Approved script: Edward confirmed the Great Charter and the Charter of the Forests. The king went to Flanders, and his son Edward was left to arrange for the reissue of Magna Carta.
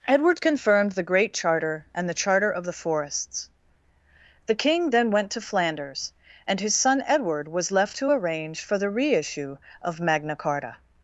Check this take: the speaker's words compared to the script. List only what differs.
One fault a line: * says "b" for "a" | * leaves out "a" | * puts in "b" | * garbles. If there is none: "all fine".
* puts in "then"